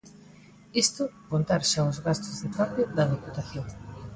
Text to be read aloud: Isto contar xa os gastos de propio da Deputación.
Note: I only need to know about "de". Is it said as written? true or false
true